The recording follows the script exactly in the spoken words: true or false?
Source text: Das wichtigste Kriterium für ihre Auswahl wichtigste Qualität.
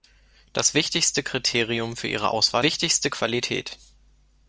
true